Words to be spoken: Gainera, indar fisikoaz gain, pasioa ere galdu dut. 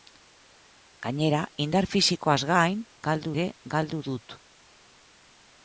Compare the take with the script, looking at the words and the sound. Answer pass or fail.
fail